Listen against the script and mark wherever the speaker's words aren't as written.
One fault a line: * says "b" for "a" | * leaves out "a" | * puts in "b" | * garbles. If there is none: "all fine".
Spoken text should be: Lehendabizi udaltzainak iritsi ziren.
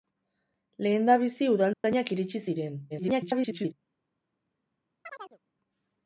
* garbles